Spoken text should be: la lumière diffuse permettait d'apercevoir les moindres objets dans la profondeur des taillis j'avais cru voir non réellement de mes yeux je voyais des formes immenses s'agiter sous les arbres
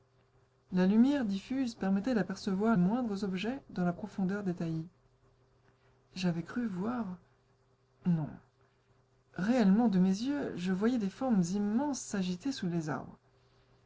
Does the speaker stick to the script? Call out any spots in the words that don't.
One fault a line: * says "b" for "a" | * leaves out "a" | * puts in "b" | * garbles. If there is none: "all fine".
* leaves out "les"